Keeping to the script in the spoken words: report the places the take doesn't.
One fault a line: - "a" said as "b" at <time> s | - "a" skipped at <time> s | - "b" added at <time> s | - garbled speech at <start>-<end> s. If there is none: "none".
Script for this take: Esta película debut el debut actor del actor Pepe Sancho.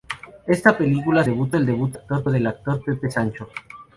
none